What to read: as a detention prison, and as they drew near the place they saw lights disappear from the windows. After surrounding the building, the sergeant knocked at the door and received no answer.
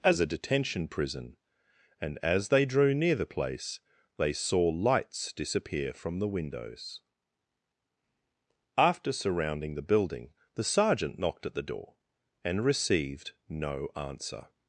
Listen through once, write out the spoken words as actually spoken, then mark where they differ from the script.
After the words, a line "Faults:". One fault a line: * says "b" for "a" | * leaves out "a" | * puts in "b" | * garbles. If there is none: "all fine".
as a detention prison, and as they drew near the place they saw lights disappear from the windows. After surrounding the building, the sergeant knocked at the door and received no answer.
Faults:
all fine